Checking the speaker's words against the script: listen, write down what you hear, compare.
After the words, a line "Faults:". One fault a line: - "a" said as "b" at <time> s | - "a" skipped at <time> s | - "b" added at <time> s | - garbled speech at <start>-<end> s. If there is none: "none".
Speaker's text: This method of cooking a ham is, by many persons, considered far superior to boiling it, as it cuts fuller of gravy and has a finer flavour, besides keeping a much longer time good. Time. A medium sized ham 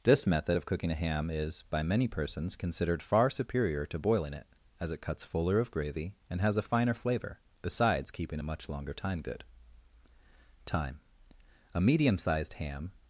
This method of cooking a ham is, by many persons, considered far superior to boiling it, as it cuts fuller of gravy and has a finer flavour, besides keeping a much longer time good. Time. A medium sized ham
Faults:
none